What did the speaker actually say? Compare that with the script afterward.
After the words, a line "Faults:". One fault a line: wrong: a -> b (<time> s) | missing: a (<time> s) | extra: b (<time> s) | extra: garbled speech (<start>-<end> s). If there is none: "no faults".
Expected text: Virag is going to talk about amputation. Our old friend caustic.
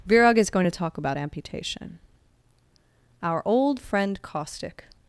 Virag is going to talk about amputation. Our old friend caustic.
Faults:
no faults